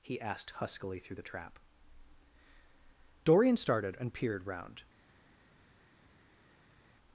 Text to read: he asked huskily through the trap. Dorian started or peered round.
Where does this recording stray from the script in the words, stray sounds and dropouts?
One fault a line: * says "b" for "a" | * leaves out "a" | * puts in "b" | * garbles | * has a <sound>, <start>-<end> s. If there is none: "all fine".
* says "and" for "or"